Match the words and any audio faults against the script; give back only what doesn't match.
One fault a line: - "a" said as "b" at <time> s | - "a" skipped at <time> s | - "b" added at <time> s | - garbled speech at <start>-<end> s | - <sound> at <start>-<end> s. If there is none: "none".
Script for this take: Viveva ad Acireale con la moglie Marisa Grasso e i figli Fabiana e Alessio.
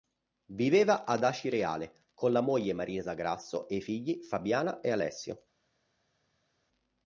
none